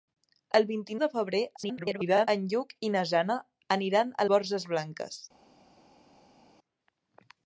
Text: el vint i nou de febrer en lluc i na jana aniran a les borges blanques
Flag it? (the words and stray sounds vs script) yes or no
yes